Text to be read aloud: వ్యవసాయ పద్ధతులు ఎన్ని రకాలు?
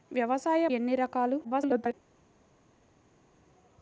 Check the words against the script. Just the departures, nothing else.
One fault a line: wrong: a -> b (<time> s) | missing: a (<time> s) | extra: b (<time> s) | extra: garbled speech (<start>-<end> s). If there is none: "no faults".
missing: పద్ధతులు (0.7 s)
extra: garbled speech (1.4-1.9 s)